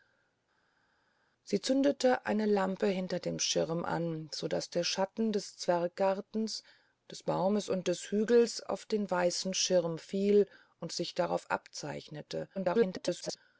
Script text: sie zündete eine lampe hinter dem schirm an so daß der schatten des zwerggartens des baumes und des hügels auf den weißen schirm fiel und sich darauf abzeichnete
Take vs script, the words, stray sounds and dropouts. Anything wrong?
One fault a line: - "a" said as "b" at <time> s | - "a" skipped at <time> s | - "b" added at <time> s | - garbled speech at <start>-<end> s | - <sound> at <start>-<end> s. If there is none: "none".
- garbled speech at 12.5-13.4 s